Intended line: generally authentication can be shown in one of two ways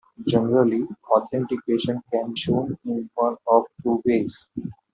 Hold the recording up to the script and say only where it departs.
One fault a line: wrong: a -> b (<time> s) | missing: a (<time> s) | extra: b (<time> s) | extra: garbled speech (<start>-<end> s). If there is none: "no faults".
missing: be (2.4 s)